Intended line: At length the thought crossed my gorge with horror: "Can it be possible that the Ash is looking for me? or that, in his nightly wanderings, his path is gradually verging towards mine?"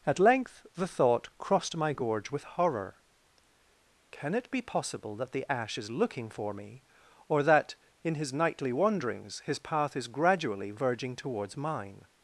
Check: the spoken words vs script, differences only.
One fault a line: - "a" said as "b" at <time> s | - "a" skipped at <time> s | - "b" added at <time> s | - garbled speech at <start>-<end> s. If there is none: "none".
none